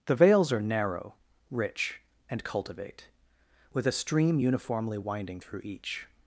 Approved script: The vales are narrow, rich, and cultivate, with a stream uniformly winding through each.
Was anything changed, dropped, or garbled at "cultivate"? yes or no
no